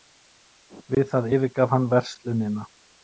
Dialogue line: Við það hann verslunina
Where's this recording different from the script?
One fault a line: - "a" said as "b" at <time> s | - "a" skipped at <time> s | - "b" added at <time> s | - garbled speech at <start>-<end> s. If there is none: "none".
- "yfirgaf" added at 1.4 s